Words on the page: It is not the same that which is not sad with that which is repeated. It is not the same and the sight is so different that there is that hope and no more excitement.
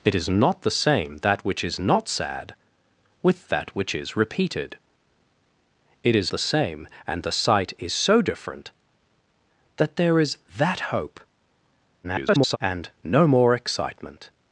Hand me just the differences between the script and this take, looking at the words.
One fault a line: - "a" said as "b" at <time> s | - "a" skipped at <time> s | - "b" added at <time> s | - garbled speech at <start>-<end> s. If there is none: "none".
- "not" skipped at 6.3 s
- garbled speech at 12.0-12.6 s